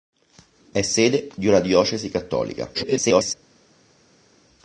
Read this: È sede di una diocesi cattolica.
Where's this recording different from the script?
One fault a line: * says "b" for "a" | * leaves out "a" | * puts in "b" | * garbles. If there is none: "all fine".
* garbles